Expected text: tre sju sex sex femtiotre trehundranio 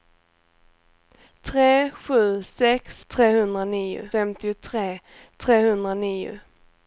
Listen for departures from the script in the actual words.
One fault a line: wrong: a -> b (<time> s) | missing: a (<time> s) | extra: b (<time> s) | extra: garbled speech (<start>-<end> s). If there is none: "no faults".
wrong: sex -> trehundranio (3.1 s)